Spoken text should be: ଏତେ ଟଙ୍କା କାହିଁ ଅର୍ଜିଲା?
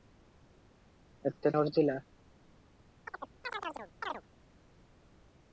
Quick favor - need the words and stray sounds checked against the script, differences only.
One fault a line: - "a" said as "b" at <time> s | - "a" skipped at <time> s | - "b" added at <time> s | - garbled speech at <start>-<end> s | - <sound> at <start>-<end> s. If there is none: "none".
- "ଟଙ୍କା କାହିଁ" skipped at 1.5 s
- chirp at 3.1-4.2 s